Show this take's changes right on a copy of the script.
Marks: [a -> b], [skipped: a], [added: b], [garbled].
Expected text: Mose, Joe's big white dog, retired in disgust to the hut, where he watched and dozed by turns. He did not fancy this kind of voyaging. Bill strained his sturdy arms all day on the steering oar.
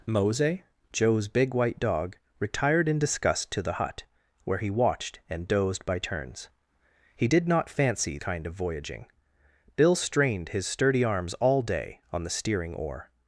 Mose, Joe's big white dog, retired in disgust to the hut, where he watched and dozed by turns. He did not fancy [skipped: this] kind of voyaging. Bill strained his sturdy arms all day on the steering oar.